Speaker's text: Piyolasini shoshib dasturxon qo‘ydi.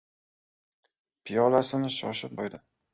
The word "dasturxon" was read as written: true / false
false